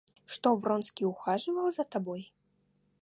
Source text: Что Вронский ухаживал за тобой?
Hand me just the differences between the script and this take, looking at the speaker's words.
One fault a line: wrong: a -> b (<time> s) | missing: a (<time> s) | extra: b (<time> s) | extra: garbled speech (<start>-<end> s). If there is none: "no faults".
no faults